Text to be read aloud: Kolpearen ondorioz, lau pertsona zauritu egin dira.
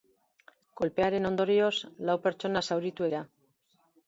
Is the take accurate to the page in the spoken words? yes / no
no